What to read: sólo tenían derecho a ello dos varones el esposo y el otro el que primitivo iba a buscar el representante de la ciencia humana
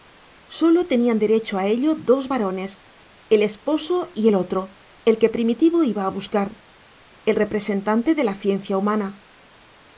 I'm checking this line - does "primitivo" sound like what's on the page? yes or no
yes